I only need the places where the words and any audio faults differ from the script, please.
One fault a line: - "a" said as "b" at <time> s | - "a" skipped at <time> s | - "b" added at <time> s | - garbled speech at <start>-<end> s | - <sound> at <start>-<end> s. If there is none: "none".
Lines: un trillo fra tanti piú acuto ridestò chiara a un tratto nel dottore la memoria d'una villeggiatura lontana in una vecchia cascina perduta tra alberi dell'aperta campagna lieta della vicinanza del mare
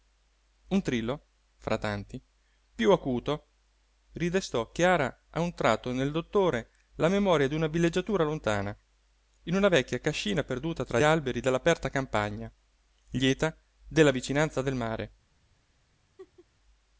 - laugh at 16.2-16.5 s